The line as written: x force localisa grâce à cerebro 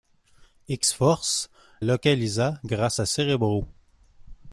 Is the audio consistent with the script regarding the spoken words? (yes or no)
yes